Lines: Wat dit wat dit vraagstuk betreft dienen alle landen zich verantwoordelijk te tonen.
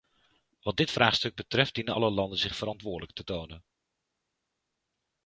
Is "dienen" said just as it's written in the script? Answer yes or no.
yes